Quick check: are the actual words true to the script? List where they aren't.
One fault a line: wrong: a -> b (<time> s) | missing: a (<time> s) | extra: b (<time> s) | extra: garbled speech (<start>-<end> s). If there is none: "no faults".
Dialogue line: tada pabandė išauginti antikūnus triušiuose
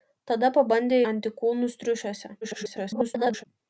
missing: išauginti (1.0 s)
extra: garbled speech (2.4-3.4 s)